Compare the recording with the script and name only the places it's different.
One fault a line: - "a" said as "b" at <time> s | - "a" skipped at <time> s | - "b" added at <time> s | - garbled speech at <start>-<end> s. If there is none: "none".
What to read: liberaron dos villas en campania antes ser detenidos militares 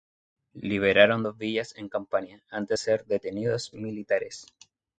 none